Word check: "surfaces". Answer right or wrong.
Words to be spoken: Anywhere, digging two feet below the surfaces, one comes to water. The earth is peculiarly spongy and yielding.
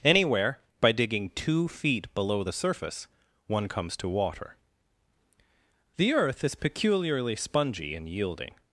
wrong